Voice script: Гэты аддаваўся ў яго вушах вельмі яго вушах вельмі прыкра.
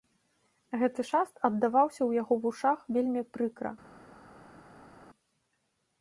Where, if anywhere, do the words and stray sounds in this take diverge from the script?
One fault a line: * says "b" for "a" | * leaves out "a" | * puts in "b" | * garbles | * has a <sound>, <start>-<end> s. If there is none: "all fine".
* puts in "шаст"
* leaves out "яго вушах вельмі"